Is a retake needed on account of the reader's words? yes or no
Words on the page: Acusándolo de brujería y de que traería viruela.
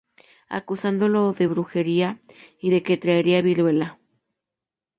no